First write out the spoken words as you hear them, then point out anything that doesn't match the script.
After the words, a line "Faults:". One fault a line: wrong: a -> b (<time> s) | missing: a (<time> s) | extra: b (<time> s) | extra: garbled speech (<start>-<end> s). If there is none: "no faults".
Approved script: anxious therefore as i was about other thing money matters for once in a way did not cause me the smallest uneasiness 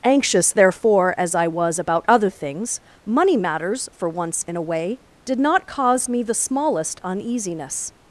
anxious therefore as i was about other things money matters for once in a way did not cause me the smallest uneasiness
Faults:
wrong: thing -> things (2.3 s)